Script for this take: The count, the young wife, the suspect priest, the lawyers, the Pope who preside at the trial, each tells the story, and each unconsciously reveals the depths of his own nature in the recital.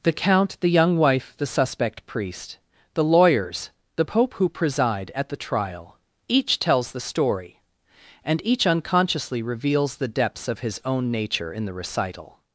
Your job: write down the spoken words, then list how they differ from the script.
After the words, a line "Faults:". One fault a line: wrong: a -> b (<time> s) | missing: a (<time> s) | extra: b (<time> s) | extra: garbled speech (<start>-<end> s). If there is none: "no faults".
The count, the young wife, the suspect priest, the lawyers, the Pope who preside at the trial, each tells the story, and each unconsciously reveals the depths of his own nature in the recital.
Faults:
no faults